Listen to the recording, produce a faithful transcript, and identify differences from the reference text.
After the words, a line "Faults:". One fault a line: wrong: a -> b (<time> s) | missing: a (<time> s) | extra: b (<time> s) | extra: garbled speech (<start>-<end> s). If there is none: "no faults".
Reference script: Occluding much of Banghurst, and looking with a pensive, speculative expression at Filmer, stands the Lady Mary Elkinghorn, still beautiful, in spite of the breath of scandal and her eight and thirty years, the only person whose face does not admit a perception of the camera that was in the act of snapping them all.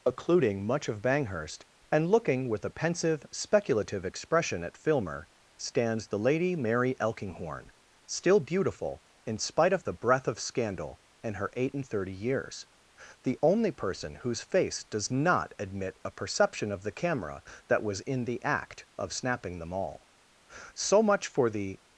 Occluding much of Banghurst, and looking with a pensive, speculative expression at Filmer, stands the Lady Mary Elkinghorn, still beautiful, in spite of the breath of scandal and her eight and thirty years, the only person whose face does not admit a perception of the camera that was in the act of snapping them all. So much for the
Faults:
extra: So much for the (20.7 s)